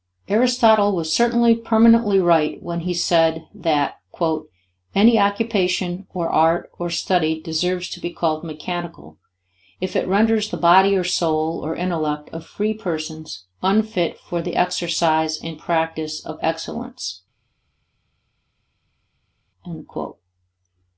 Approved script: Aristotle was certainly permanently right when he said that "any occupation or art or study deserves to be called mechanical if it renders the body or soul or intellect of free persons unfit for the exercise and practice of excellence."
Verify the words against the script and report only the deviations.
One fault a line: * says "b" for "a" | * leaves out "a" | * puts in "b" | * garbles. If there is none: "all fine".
all fine